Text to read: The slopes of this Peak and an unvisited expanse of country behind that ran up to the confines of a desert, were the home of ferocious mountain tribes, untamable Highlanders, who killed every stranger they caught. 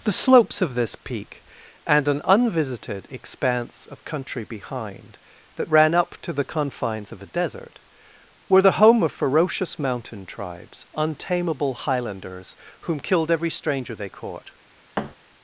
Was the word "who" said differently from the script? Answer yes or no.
yes